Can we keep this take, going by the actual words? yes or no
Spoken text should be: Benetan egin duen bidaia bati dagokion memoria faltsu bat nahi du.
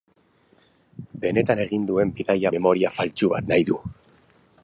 no